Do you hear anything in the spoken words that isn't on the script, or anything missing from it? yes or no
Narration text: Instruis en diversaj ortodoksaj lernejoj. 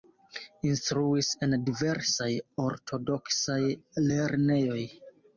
no